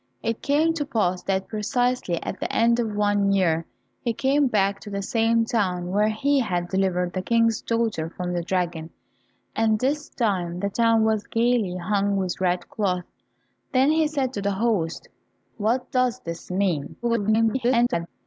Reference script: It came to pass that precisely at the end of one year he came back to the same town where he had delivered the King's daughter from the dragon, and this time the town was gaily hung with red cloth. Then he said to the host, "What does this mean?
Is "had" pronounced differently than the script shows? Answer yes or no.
no